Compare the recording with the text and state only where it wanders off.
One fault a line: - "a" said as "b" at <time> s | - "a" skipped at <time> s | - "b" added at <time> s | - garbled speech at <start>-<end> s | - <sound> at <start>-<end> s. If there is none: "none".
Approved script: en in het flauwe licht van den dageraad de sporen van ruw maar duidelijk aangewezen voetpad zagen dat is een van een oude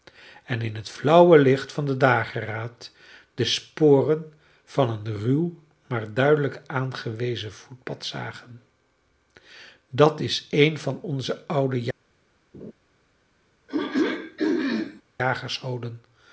- "een" added at 4.9 s
- "een" said as "onze" at 11.0 s
- laugh at 12.5-12.7 s
- throat clearing at 13.7-15.0 s